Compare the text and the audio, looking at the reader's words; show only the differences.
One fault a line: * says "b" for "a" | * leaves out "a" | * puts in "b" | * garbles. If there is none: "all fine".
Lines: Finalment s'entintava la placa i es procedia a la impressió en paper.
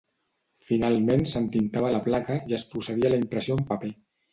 all fine